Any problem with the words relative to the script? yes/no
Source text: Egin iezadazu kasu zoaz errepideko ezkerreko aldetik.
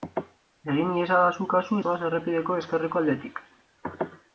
no